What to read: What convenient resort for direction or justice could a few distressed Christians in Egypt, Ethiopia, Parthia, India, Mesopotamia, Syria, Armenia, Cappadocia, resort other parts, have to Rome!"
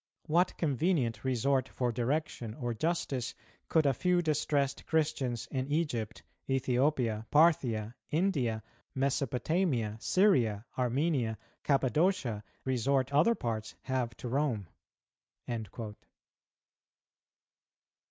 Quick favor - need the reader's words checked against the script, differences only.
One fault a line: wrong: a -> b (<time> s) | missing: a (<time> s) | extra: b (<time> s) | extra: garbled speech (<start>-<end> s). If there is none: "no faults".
no faults